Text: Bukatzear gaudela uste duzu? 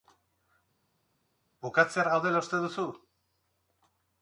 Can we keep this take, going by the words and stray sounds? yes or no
yes